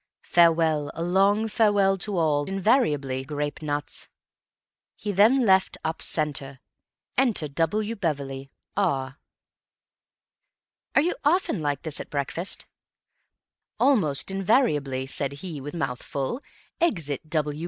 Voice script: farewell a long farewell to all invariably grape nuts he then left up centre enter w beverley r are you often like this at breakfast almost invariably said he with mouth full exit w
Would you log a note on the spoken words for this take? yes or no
no